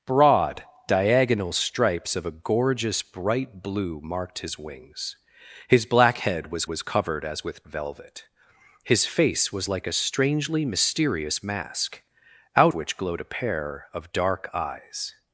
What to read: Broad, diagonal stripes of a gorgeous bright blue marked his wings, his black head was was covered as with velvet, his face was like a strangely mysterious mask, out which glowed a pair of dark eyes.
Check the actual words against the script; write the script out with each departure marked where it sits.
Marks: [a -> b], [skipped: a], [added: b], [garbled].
Broad, diagonal stripes of a gorgeous bright blue marked his wings, his black head was was covered as with velvet, his face was like a strangely mysterious mask, out which glowed a pair of dark eyes.